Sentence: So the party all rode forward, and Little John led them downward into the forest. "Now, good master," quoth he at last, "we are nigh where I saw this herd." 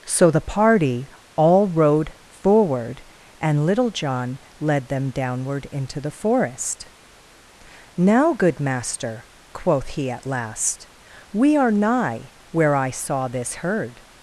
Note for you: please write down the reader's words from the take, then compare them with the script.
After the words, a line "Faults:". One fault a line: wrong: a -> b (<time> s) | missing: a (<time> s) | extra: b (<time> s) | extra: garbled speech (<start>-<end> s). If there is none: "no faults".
So the party all rode forward, and Little John led them downward into the forest. "Now, good master," quoth he at last, "we are nigh where I saw this herd."
Faults:
no faults